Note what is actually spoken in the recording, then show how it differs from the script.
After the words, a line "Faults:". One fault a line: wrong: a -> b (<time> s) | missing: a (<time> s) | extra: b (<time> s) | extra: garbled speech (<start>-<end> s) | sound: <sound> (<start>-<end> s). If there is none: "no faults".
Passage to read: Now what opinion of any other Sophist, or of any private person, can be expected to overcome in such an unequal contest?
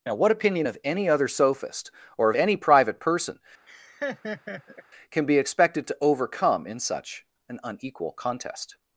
Now what opinion of any other Sophist, or of any private person, can be expected to overcome in such an unequal contest?
Faults:
sound: laugh (3.7-4.8 s)